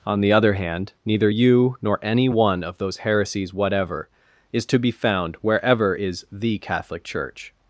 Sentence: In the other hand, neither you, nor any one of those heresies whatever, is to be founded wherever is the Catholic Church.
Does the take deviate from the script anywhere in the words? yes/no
yes